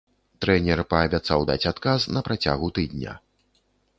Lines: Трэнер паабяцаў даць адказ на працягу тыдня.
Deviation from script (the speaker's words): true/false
false